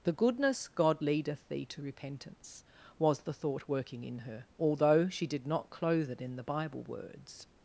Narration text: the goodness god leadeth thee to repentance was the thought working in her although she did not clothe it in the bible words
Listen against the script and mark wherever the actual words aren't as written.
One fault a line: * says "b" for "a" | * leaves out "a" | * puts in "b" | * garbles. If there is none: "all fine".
all fine